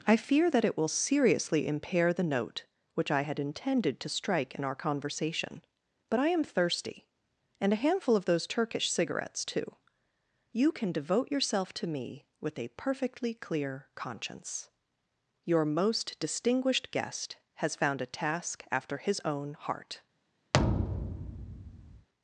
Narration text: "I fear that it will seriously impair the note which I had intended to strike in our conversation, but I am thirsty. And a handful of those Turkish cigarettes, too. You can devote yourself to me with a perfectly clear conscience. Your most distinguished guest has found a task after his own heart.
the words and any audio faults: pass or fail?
fail